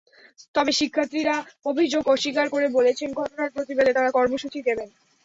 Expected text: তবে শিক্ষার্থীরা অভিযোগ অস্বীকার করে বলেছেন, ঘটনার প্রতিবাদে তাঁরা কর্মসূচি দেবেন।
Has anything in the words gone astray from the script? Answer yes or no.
no